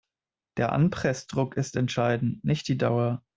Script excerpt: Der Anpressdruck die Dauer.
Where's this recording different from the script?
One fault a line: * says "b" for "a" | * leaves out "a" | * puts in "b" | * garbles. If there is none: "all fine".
* puts in "ist entscheidend nicht"